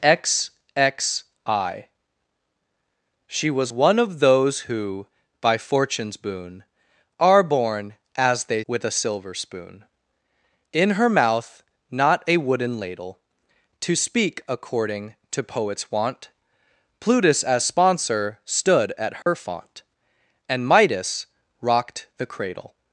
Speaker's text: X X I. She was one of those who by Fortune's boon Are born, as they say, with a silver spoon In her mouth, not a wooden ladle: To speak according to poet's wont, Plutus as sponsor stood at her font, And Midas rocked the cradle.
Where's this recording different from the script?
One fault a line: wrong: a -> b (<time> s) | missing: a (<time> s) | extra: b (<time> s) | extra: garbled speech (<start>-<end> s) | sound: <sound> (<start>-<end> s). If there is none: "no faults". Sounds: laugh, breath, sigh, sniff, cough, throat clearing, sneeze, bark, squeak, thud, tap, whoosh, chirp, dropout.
missing: say (8.6 s)
sound: dropout (19.2-19.3 s)